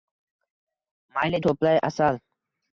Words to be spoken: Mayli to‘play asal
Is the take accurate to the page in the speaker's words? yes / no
yes